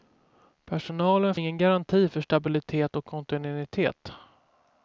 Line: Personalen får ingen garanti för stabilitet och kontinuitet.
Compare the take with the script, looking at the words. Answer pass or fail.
fail